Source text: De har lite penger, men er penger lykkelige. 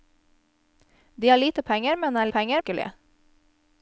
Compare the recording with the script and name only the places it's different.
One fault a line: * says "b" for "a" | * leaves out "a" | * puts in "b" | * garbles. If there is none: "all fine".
all fine